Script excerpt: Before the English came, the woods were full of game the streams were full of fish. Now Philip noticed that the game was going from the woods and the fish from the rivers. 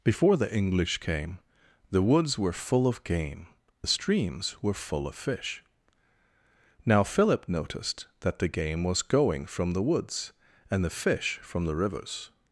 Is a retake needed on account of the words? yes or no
no